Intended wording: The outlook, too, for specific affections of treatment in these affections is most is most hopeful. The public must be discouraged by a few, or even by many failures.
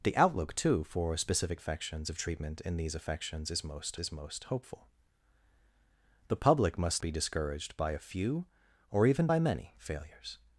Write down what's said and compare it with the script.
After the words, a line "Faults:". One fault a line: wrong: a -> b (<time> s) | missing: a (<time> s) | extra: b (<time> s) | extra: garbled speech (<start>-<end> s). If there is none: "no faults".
The outlook, too, for specific affections of treatment in these affections is most is most hopeful. The public must be discouraged by a few, or even by many failures.
Faults:
no faults